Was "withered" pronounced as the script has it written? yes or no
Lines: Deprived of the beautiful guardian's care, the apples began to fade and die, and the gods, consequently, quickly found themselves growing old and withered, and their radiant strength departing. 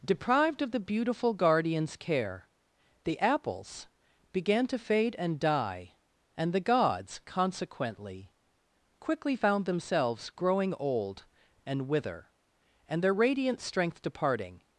no